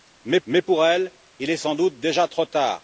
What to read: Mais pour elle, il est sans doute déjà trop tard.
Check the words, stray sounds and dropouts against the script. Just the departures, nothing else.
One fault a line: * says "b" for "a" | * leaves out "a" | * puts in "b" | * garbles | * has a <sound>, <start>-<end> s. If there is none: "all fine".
* puts in "mais"